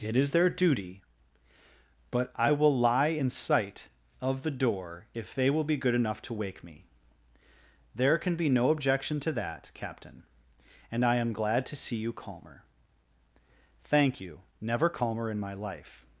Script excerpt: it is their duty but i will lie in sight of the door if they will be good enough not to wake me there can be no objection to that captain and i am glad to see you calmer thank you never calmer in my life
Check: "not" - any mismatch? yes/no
yes